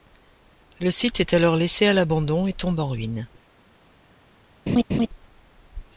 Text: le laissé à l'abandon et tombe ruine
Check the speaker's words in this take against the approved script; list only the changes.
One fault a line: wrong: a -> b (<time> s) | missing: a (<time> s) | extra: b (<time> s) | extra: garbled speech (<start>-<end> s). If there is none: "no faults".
extra: site est alors (0.9 s)
extra: en (2.8 s)